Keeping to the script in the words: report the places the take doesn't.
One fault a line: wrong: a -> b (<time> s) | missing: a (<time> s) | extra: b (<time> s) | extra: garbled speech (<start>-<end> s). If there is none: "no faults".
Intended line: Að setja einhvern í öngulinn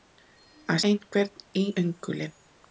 missing: setja (0.8 s)